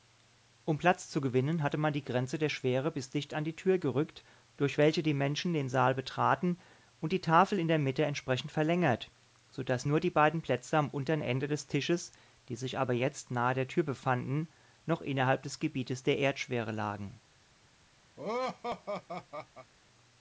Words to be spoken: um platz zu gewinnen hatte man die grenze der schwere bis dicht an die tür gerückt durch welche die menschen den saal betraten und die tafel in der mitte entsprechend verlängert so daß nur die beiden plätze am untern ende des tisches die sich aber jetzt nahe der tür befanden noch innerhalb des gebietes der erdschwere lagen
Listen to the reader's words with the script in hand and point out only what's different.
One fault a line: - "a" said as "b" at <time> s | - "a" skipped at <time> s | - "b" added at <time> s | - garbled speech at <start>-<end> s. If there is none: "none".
none